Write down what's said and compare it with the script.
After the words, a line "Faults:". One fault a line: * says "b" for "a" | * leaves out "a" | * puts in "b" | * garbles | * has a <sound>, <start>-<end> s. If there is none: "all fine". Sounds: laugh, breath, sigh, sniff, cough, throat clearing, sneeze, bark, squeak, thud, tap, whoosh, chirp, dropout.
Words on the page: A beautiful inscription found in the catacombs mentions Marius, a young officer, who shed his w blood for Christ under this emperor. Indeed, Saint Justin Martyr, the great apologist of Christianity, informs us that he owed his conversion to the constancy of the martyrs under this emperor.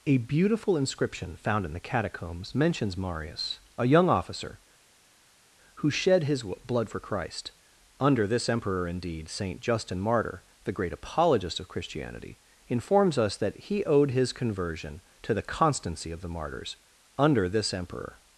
A beautiful inscription found in the catacombs mentions Marius, a young officer, who shed his w blood for Christ under this emperor. Indeed, Saint Justin Martyr, the great apologist of Christianity, informs us that he owed his conversion to the constancy of the martyrs under this emperor.
Faults:
all fine